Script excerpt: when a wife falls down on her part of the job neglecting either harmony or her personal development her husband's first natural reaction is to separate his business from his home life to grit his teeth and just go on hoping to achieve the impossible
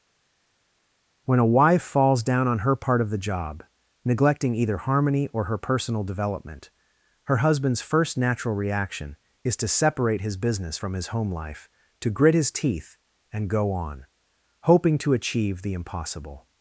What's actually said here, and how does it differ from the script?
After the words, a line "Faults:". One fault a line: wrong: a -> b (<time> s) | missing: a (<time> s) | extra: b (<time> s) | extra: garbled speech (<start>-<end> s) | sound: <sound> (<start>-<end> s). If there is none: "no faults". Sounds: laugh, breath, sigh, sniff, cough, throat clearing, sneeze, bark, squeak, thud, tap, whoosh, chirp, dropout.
when a wife falls down on her part of the job neglecting either harmony or her personal development her husband's first natural reaction is to separate his business from his home life to grit his teeth and go on hoping to achieve the impossible
Faults:
missing: just (13.5 s)